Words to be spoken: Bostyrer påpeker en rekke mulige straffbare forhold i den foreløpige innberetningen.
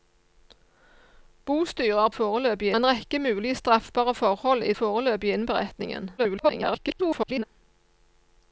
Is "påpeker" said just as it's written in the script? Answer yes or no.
no